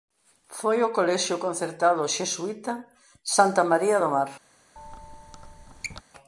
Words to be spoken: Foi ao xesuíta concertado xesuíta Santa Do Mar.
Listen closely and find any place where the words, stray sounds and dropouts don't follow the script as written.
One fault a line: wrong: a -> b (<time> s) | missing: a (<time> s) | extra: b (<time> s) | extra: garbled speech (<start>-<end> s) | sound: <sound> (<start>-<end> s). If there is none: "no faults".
wrong: xesuíta -> colexio (1.0 s)
extra: María (3.7 s)
sound: squeak (4.8-6.0 s)